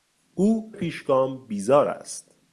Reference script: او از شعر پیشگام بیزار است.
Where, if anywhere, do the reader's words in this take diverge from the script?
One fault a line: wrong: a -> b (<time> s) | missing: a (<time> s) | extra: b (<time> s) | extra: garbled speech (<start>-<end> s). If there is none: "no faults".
missing: از شعر (0.7 s)